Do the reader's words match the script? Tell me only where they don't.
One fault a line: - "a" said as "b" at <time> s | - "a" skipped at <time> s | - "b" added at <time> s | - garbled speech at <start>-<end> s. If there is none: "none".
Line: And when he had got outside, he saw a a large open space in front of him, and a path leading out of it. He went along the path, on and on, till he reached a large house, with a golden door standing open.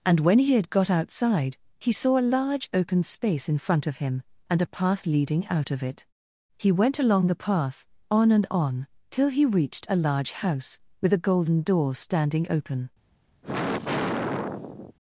- "a" skipped at 2.3 s